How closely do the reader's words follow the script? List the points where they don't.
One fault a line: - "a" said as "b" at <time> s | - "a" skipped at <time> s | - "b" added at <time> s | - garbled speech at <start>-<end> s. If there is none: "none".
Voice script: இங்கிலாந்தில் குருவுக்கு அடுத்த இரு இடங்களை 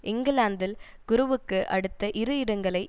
none